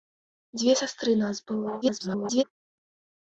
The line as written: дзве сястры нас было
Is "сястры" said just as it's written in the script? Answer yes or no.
yes